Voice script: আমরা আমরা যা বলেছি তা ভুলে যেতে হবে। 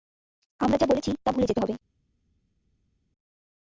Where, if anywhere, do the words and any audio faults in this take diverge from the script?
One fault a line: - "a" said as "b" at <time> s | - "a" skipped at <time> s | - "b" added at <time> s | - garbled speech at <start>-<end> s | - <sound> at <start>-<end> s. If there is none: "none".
- "আমরা" skipped at 0.8 s